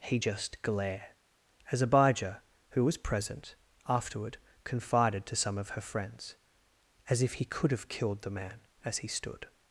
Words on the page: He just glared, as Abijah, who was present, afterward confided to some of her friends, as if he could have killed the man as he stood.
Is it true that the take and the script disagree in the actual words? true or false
true